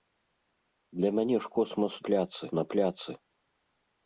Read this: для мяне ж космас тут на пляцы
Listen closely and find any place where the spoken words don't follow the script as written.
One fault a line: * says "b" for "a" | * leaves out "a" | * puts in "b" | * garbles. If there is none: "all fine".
* says "пляцы" for "тут"